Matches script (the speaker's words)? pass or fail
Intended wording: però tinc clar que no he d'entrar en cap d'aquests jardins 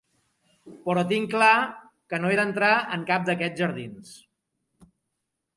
pass